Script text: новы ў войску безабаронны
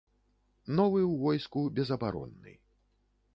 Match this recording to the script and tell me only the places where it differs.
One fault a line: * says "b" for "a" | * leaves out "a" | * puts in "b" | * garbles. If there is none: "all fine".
all fine